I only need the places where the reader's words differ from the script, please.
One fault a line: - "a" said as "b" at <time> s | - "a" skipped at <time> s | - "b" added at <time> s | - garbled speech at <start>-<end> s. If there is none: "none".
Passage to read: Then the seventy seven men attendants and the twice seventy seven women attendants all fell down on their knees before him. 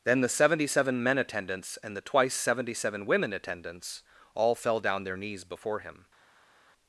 - "on" skipped at 5.0 s